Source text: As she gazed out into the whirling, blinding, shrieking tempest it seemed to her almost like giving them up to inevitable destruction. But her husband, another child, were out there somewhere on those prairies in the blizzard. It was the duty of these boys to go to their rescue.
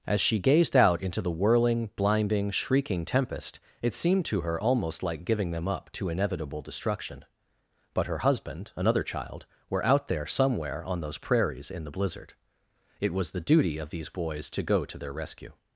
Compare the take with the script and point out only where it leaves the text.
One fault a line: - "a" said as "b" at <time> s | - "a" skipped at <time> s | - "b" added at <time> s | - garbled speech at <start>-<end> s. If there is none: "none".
none